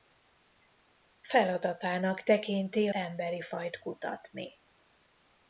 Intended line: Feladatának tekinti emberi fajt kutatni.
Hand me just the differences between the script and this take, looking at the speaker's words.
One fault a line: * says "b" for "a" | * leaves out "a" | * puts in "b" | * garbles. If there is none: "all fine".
all fine